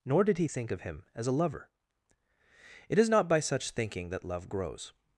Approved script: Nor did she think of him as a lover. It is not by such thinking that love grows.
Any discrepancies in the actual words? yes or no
yes